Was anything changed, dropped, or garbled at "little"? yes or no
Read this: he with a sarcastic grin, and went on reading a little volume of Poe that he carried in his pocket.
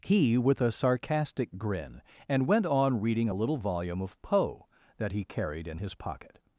no